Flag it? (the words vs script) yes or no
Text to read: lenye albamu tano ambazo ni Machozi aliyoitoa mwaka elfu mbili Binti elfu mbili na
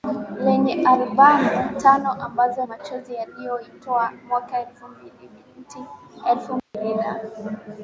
yes